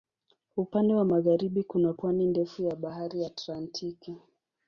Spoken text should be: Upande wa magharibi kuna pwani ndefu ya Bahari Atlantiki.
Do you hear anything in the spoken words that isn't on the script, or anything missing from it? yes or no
no